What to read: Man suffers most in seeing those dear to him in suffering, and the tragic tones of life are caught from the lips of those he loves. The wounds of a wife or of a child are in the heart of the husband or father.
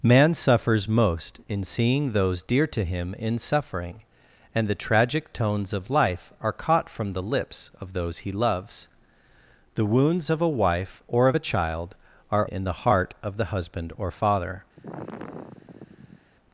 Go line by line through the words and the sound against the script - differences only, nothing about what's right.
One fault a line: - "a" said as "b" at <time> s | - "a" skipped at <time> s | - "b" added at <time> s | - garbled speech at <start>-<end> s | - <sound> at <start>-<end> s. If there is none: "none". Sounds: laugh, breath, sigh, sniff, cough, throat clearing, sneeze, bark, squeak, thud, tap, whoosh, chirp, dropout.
- sigh at 14.8-16.3 s